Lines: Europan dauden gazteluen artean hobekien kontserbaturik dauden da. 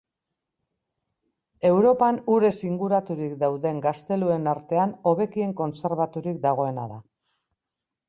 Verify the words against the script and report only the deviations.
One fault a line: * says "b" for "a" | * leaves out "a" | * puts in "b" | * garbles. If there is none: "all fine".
* puts in "urez inguraturik"
* says "dagoena" for "dauden"